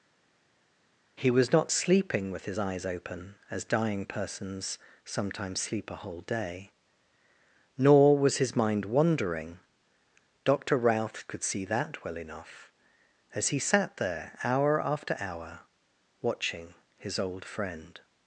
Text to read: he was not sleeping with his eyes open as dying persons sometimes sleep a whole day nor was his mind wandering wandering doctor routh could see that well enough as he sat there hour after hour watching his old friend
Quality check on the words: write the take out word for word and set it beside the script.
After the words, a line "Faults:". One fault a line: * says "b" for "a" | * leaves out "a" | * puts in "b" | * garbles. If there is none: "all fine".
he was not sleeping with his eyes open as dying persons sometimes sleep a whole day nor was his mind wandering doctor routh could see that well enough as he sat there hour after hour watching his old friend
Faults:
* leaves out "wandering"